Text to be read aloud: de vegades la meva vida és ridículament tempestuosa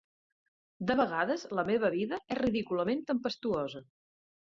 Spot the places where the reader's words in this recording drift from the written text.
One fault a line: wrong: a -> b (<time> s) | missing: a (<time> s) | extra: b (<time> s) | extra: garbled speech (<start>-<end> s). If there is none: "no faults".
no faults